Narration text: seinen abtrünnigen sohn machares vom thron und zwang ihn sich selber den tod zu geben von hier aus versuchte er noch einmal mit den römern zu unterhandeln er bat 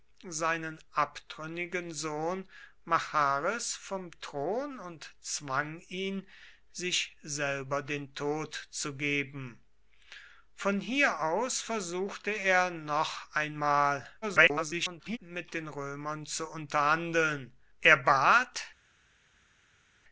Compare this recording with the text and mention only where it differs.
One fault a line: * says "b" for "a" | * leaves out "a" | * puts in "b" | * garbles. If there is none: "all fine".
* garbles